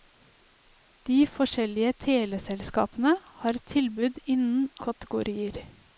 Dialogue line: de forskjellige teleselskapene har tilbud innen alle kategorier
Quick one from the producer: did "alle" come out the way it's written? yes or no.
no